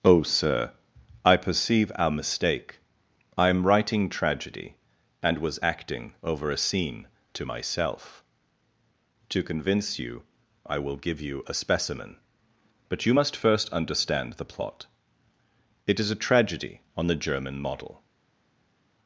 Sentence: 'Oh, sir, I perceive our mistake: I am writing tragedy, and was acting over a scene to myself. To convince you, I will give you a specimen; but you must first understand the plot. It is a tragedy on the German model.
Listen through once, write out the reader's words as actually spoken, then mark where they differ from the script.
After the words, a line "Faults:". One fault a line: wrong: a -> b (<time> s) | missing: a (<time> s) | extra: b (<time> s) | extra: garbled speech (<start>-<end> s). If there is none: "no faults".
'Oh, sir, I perceive our mistake: I am writing tragedy, and was acting over a scene to myself. To convince you, I will give you a specimen; but you must first understand the plot. It is a tragedy on the German model.
Faults:
no faults